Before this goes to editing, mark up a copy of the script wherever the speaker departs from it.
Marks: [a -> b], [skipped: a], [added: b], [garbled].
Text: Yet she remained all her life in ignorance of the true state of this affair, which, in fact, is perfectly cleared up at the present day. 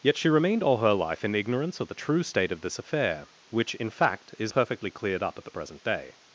Yet she remained all her life in ignorance of the true state of this affair, which, in fact, is perfectly cleared up at the present day.